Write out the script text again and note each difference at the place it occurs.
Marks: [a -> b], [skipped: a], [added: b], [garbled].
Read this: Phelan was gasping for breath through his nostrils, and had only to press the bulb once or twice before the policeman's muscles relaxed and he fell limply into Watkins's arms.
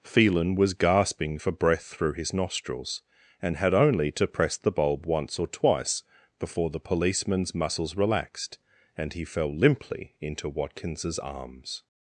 Phelan was gasping for breath through his nostrils, and had only to press the bulb once or twice before the policeman's muscles relaxed and he fell limply into Watkins's arms.